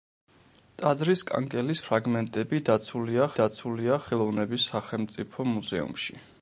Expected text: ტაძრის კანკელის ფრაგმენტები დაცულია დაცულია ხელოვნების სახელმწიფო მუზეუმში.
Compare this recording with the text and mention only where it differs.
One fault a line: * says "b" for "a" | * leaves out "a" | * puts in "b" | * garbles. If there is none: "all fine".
all fine